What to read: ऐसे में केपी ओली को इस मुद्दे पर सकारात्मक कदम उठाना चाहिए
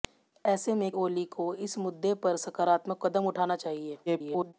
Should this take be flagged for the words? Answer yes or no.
yes